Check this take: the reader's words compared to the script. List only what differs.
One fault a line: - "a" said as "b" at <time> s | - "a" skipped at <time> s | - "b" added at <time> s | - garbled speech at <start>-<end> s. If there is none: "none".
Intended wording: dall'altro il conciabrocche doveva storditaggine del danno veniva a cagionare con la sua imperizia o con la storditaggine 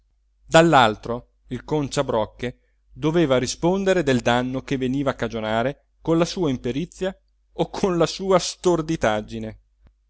- "storditaggine" said as "rispondere" at 3.4 s
- "che" added at 4.6 s
- "sua" added at 8.1 s